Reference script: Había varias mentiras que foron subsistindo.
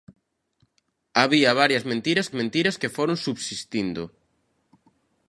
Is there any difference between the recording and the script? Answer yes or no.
yes